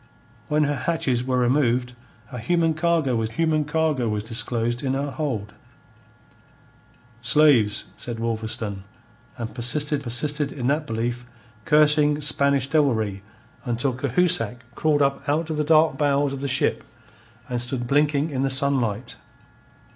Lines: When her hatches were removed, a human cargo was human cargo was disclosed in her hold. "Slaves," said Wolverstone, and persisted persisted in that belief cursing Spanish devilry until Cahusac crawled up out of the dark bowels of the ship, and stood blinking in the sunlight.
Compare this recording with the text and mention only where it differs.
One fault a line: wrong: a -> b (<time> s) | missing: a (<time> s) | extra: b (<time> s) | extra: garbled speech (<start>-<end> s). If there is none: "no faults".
no faults